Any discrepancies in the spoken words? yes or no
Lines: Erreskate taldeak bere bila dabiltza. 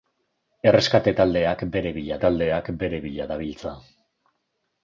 yes